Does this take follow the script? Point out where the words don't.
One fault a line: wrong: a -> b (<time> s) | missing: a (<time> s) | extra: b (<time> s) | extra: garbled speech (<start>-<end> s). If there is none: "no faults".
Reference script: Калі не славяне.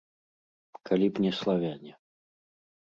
extra: б (1.1 s)